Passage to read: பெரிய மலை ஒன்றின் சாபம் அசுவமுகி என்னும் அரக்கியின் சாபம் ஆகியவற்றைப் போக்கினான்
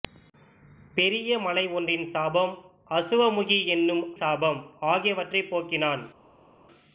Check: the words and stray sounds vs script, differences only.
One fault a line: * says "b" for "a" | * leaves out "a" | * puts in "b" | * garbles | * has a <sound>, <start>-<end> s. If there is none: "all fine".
* leaves out "அரக்கியின்"